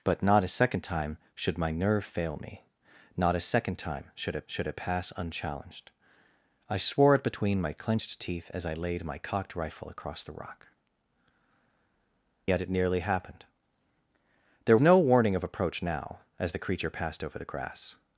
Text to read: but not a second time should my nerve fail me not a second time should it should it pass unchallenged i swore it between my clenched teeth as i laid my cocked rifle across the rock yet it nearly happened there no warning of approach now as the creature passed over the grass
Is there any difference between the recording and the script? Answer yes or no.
no